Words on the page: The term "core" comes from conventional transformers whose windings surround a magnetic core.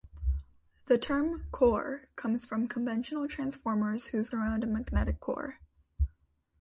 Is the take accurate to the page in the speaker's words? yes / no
no